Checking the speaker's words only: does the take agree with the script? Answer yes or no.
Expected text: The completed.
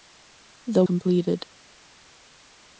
yes